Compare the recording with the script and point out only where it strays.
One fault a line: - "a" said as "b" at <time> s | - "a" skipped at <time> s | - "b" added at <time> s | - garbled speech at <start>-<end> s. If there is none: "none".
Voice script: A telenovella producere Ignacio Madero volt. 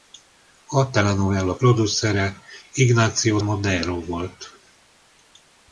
none